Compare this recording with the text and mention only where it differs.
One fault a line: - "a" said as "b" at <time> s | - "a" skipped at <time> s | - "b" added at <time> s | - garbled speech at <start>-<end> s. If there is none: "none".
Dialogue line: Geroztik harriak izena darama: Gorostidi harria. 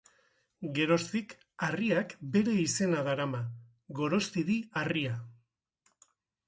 - "bere" added at 2.4 s